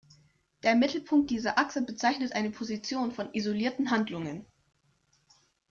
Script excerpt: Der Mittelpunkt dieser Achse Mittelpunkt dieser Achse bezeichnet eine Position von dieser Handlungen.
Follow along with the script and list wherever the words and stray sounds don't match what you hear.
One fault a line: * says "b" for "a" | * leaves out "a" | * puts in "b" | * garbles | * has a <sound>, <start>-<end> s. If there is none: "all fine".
* leaves out "Mittelpunkt dieser Achse"
* says "isolierten" for "dieser"